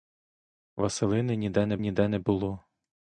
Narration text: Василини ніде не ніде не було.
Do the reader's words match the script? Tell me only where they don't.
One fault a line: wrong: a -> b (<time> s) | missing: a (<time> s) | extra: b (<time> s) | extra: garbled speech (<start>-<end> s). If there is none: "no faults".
no faults